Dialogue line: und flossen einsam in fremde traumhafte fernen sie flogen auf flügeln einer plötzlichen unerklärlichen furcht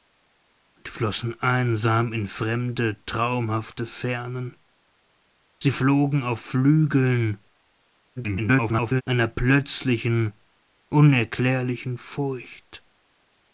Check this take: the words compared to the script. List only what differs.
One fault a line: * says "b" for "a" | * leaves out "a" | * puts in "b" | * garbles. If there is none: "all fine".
* garbles